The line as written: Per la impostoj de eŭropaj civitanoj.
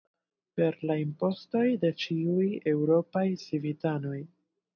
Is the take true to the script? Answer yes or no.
no